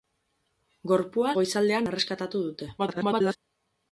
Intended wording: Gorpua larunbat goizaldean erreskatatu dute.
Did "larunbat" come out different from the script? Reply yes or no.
yes